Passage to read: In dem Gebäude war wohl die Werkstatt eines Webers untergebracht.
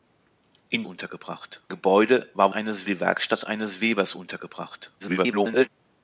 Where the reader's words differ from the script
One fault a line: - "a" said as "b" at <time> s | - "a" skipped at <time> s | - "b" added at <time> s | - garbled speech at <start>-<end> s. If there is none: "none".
- "dem" said as "untergebracht" at 0.8 s
- "wohl" said as "eines" at 2.5 s
- garbled speech at 5.0-5.7 s